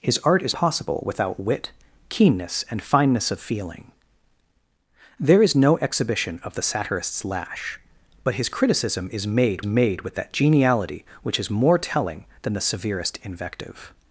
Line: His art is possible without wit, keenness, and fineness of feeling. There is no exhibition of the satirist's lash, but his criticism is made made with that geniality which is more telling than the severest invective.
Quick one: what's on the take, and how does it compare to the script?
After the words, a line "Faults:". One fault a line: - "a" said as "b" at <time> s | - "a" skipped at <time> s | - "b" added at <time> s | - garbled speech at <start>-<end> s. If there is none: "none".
His art is possible without wit, keenness, and fineness of feeling. There is no exhibition of the satirist's lash, but his criticism is made made with that geniality which is more telling than the severest invective.
Faults:
none